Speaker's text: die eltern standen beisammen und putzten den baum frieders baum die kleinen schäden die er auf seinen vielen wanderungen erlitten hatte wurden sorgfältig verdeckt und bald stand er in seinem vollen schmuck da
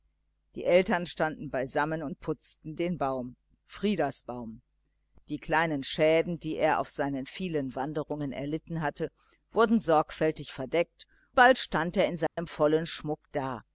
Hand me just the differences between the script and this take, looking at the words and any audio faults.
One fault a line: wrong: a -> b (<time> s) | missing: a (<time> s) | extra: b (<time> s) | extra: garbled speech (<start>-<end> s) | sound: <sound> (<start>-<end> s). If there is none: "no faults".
missing: und (11.1 s)
sound: dropout (12.3-12.4 s)